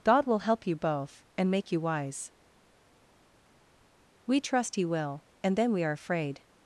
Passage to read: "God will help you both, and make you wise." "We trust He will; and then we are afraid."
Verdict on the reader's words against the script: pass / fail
pass